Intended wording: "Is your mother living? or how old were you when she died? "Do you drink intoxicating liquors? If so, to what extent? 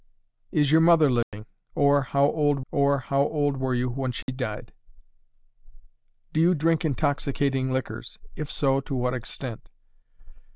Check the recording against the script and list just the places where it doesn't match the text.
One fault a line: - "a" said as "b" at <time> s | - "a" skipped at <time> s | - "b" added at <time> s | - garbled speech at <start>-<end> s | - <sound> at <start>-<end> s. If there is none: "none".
- dropout at 1.2-1.3 s
- "or how old" added at 2.7 s
- dropout at 4.2-4.3 s